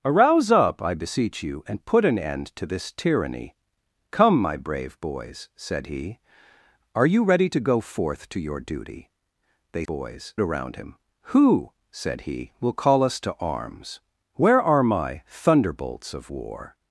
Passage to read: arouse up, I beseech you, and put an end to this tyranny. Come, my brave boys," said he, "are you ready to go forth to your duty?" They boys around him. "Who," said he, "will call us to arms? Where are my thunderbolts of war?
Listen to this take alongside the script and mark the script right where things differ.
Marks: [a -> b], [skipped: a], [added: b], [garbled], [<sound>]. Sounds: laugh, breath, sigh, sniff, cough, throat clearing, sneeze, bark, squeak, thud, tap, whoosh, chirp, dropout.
arouse up, I beseech you, and put an end to this tyranny. Come, my brave boys," said he, "are you ready to go forth to your duty?" They boys around him. "Who," said he, "will call us to arms? Where are my thunderbolts of war?